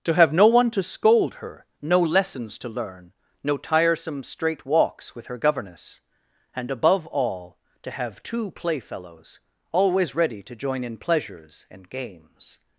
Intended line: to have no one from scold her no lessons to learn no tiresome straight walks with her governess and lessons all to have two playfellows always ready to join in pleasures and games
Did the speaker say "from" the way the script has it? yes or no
no